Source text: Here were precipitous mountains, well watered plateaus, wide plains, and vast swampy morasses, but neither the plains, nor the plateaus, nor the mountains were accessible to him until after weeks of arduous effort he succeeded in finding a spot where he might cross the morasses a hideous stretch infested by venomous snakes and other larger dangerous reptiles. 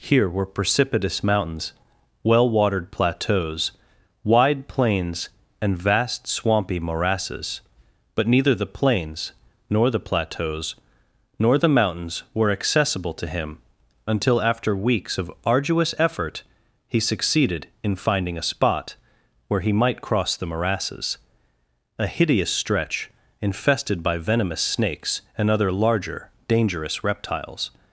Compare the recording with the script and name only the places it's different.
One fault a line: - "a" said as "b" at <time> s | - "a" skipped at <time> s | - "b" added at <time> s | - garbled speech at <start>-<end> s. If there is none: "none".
none